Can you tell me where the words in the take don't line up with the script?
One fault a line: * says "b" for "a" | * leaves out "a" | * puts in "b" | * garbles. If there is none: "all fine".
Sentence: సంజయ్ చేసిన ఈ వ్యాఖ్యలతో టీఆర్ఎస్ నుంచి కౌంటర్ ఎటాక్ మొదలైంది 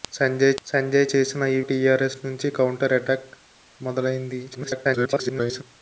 * puts in "సంజయ్"
* leaves out "వ్యాఖ్యలతో"
* garbles